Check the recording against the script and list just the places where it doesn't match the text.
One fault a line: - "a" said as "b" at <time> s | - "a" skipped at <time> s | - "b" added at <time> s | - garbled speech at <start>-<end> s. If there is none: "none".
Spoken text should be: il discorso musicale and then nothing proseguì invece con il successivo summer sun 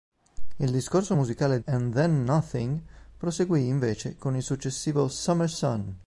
none